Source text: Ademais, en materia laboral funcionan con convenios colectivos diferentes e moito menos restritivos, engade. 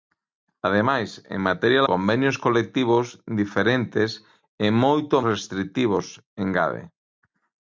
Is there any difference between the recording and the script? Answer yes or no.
yes